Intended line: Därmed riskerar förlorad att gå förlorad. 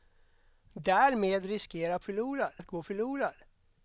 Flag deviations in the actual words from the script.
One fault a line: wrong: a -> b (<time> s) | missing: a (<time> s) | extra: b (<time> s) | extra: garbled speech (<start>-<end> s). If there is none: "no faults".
no faults